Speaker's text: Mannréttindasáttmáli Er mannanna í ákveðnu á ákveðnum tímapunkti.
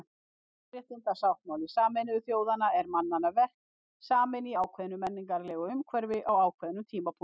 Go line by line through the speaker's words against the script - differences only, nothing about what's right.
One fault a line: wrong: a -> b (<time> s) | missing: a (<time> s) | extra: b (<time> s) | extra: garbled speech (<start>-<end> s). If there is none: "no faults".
extra: Sameinuðu þjóðanna (1.7 s)
extra: verk saminn (3.4 s)
extra: menningarlegu umhverfi (5.0 s)